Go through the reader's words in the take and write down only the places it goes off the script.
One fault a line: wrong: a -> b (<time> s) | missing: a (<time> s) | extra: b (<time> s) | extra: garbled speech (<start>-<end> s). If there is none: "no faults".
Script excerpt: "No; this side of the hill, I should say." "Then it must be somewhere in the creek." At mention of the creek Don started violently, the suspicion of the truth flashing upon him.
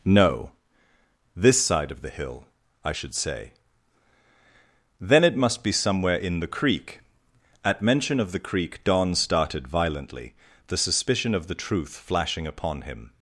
no faults